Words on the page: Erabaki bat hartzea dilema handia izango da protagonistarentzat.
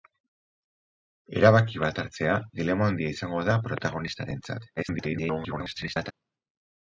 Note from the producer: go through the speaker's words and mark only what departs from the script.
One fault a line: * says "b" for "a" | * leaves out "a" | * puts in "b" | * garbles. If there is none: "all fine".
* garbles